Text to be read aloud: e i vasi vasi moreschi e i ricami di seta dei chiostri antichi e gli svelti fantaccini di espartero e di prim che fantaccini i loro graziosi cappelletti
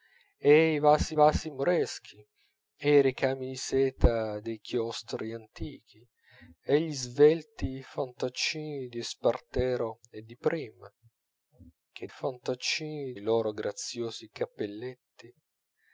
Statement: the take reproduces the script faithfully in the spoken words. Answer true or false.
true